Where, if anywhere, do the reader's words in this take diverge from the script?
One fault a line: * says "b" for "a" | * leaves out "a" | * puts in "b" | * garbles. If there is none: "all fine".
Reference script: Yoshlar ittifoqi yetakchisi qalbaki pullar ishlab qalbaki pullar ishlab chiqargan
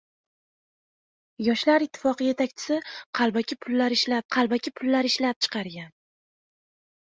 all fine